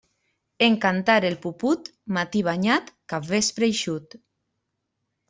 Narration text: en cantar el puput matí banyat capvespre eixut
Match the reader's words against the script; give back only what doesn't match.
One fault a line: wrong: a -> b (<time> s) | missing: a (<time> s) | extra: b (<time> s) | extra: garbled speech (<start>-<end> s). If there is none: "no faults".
no faults